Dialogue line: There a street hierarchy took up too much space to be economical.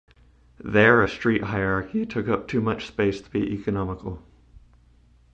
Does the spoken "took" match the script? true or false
true